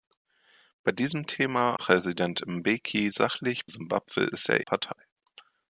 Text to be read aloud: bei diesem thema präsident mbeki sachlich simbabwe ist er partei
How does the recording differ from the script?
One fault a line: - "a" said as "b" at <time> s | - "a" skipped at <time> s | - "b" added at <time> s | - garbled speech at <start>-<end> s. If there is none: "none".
none